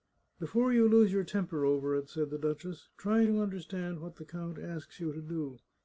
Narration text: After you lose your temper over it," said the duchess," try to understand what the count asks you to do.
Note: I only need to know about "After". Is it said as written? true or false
false